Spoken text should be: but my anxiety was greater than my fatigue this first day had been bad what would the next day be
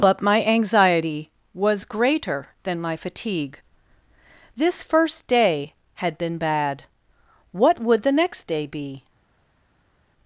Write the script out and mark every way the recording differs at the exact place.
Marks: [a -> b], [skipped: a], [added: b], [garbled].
but my anxiety was greater than my fatigue this first day had been bad what would the next day be